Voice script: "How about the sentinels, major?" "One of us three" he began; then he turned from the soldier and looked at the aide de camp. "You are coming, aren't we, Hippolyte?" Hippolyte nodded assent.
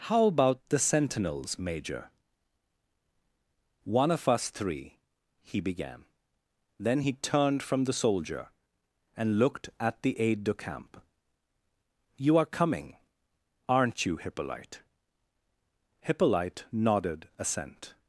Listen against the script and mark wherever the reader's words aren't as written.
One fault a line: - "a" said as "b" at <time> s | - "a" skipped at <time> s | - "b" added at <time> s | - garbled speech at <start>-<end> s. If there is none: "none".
- "we" said as "you" at 14.1 s